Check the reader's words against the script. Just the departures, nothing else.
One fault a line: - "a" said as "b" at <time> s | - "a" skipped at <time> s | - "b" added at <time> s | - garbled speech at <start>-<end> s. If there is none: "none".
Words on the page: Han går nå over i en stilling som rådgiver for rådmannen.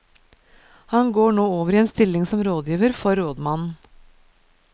none